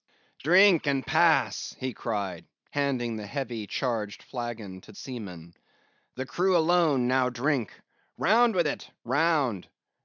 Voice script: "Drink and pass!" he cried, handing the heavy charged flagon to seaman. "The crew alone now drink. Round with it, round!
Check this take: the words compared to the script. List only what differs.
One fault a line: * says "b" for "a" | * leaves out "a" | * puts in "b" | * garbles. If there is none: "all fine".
all fine